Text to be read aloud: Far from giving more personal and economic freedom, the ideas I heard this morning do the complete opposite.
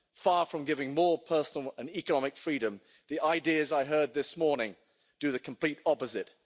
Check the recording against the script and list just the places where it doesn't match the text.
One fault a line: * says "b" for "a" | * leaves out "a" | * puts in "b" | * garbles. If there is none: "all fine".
all fine